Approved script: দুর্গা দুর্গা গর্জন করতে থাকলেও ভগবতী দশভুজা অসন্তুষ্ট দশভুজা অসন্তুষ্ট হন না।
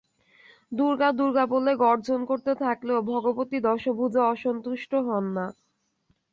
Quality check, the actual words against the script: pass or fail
fail